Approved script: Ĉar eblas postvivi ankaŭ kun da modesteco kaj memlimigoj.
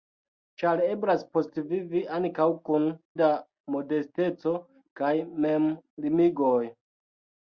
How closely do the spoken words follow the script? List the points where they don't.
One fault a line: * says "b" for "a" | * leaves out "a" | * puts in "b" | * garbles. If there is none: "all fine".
all fine